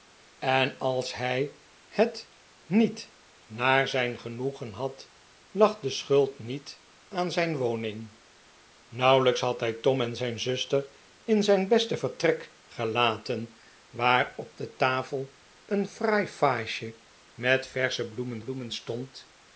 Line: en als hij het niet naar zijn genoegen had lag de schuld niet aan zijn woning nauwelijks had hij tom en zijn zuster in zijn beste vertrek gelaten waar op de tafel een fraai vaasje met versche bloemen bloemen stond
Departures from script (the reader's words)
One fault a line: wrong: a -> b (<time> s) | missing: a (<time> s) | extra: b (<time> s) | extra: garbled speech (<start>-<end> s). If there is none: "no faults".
no faults